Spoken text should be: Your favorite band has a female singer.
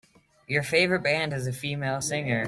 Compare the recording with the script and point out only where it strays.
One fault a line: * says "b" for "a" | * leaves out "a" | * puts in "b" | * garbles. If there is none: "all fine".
all fine